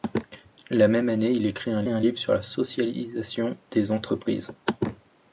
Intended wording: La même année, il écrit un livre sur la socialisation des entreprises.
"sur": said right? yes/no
yes